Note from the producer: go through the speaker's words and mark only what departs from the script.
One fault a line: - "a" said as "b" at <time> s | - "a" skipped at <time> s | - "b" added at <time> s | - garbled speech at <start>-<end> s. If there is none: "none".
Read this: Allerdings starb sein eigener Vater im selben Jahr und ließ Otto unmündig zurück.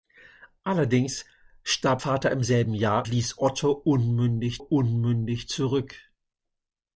- "sein eigener" skipped at 2.0 s
- "und" skipped at 3.1 s
- "unmündig" added at 4.6 s